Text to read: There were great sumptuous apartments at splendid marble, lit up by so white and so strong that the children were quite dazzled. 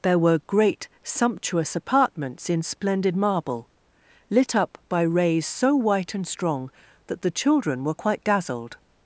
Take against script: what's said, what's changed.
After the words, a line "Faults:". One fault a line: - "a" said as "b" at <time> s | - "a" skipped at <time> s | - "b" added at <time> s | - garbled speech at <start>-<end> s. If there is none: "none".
There were great sumptuous apartments in splendid marble, lit up by rays so white and strong that the children were quite dazzled.
Faults:
- "at" said as "in" at 2.5 s
- "rays" added at 5.0 s
- "so" skipped at 6.3 s